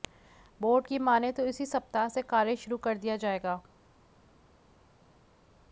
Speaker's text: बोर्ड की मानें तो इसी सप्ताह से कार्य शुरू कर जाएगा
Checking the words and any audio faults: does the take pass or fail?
fail